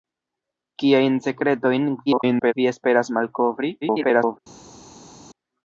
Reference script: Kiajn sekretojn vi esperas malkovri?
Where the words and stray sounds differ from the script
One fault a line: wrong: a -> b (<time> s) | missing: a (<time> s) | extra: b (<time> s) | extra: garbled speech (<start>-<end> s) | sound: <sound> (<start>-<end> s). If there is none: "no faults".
extra: garbled speech (2.1-2.5 s)
extra: garbled speech (3.8-4.4 s)